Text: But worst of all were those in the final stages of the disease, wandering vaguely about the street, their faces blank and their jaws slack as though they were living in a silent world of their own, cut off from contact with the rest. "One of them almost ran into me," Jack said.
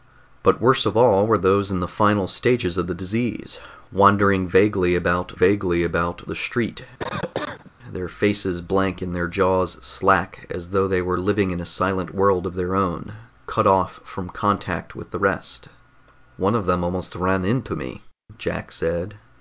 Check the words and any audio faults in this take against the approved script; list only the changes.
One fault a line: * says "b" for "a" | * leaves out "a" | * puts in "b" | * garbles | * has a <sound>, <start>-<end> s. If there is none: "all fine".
* puts in "vaguely about"
* has a cough, 7.0-7.7 s